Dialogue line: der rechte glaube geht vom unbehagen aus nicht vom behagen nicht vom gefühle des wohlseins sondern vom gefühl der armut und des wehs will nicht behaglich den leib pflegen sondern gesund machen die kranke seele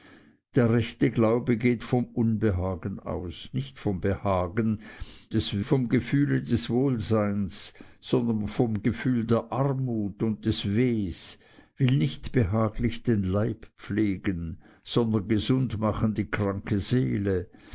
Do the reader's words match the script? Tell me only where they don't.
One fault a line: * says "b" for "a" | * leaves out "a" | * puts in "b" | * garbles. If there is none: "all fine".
* says "des" for "nicht"